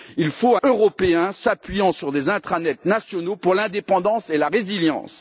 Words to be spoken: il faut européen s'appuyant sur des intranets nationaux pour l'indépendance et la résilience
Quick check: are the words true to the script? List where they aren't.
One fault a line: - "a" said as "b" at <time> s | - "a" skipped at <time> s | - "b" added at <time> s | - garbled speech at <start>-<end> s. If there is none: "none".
none